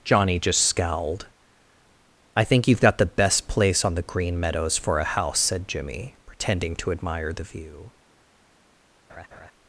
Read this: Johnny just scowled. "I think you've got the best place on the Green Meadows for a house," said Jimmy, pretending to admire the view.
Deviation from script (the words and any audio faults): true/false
true